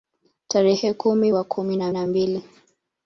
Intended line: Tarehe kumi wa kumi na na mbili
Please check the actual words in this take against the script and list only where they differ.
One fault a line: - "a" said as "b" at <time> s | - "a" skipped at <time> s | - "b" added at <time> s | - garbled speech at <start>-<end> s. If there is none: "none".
none